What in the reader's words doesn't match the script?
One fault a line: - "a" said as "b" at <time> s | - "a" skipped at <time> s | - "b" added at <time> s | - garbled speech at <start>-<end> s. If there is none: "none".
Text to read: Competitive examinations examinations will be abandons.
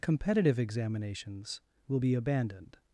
- "examinations" skipped at 1.6 s
- "abandons" said as "abandoned" at 2.1 s